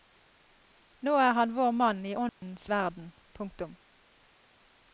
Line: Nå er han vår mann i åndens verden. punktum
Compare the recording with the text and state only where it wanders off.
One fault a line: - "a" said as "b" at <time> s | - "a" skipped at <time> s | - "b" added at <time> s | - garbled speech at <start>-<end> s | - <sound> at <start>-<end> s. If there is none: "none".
- dropout at 2.3-2.4 s